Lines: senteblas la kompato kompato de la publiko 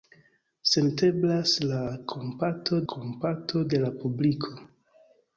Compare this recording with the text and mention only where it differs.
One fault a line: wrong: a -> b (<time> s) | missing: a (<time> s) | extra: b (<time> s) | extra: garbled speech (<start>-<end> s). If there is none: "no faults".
no faults